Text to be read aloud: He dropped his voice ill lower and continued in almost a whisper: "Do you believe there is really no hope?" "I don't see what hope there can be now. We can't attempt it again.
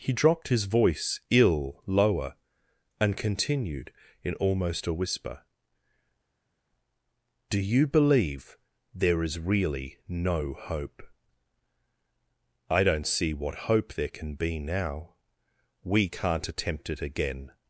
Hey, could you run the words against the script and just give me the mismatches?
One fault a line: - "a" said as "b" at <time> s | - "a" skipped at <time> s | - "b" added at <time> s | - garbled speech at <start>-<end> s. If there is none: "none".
none